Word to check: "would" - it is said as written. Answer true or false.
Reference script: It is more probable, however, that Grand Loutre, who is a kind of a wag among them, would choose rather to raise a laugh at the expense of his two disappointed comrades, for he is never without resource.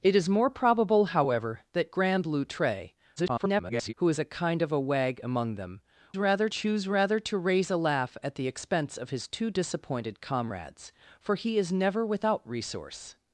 false